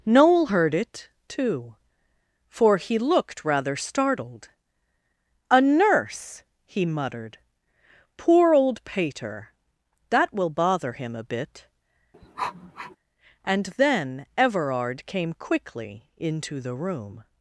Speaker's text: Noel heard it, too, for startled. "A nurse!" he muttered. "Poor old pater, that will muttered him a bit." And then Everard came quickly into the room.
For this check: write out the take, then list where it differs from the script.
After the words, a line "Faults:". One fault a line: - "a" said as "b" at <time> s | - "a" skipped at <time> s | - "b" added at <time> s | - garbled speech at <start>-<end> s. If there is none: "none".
Noel heard it, too, for he looked rather startled. "A nurse!" he muttered. "Poor old pater, that will bother him a bit." And then Everard came quickly into the room.
Faults:
- "he looked rather" added at 2.8 s
- "muttered" said as "bother" at 10.5 s